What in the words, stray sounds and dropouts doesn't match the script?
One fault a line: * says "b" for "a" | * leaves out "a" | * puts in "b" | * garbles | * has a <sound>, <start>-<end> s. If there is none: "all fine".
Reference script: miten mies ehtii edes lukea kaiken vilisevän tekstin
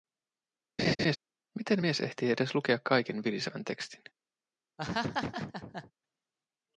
* has a laugh, 0.8-1.2 s
* has a laugh, 4.8-5.9 s